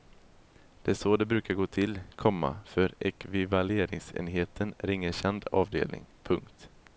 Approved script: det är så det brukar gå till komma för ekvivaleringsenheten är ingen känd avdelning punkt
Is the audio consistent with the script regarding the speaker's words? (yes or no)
yes